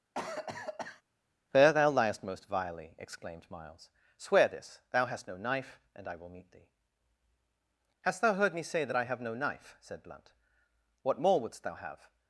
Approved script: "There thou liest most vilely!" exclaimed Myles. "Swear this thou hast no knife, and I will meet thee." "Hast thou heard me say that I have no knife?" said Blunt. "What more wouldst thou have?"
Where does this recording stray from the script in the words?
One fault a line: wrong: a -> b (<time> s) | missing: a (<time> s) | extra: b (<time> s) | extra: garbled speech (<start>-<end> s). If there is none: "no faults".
no faults